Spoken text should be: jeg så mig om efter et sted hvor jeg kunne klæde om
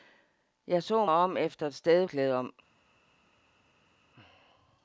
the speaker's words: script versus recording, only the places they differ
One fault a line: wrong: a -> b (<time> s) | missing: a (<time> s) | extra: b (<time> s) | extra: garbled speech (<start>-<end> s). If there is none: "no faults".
missing: mig (1.1 s)
missing: hvor jeg kunne (2.1 s)